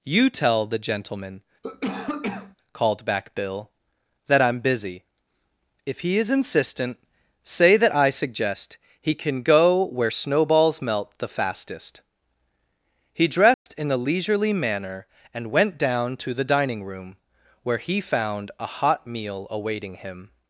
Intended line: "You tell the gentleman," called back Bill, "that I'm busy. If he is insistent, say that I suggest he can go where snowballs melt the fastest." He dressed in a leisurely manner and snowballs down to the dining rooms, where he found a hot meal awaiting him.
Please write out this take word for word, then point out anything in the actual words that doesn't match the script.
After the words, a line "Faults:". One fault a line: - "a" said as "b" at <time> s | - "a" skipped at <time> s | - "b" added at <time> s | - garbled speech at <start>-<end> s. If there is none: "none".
"You tell the gentleman," called back Bill, "that I'm busy. If he is insistent, say that I suggest he can go where snowballs melt the fastest." He dressed in a leisurely manner and went down to the dining room, where he found a hot meal awaiting him.
Faults:
- "snowballs" said as "went" at 15.5 s
- "rooms" said as "room" at 16.8 s